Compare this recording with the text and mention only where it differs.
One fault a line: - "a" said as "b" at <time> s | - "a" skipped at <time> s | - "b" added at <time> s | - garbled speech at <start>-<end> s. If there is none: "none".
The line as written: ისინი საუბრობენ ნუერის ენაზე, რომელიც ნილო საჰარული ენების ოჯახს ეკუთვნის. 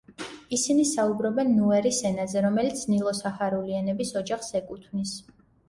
none